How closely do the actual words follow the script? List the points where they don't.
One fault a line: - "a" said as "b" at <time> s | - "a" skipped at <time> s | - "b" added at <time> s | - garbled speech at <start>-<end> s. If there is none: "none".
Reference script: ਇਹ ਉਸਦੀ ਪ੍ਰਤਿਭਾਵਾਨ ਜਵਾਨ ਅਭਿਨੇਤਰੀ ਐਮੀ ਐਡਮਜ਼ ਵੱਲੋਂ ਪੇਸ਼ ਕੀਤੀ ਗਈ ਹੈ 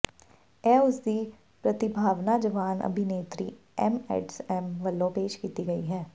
none